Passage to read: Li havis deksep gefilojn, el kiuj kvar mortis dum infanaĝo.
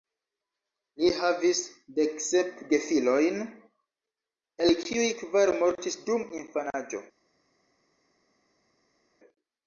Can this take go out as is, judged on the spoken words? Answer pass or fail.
pass